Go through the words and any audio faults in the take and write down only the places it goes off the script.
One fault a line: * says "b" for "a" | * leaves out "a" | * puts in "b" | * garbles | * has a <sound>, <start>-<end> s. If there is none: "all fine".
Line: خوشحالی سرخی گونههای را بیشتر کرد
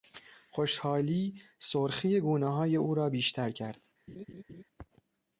* puts in "او"
* has a laugh, 4.1-4.6 s